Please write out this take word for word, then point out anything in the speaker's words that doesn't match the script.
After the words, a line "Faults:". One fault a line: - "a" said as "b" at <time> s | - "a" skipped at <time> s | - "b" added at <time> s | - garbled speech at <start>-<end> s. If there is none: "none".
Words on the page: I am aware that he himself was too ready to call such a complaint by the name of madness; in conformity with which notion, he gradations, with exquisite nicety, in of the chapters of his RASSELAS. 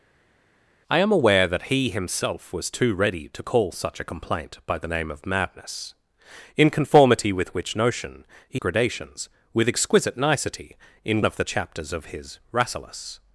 I am aware that he himself was too ready to call such a complaint by the name of madness; in conformity with which notion, he gradations, with exquisite nicety, in of the chapters of his RASSELAS.
Faults:
none